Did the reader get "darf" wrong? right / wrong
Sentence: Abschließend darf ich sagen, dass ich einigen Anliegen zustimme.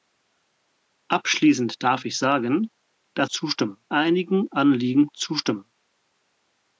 right